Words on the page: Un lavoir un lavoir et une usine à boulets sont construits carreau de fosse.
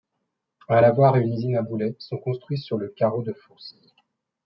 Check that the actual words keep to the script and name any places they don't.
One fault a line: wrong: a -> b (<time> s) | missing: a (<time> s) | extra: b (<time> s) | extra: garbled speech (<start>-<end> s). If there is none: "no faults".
missing: un lavoir (1.2 s)
extra: sur le (2.6 s)